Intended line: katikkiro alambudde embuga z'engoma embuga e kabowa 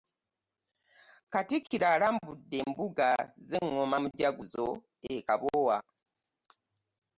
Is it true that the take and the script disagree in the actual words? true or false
true